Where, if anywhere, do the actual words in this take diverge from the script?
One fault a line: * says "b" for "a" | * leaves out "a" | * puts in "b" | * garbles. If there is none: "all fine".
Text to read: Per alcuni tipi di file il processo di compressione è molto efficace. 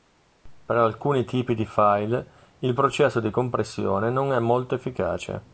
* puts in "non"